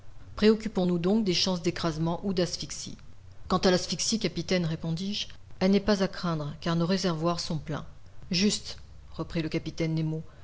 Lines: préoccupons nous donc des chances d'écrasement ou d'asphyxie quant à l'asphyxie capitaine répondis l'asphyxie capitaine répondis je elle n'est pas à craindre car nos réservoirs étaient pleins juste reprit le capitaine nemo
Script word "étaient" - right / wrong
wrong